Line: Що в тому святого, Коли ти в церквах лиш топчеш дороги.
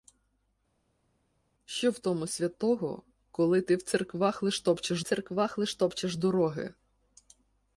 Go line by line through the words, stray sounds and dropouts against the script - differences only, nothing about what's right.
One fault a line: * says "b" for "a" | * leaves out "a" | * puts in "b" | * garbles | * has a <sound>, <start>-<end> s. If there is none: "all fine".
* puts in "церквах лиш топчеш"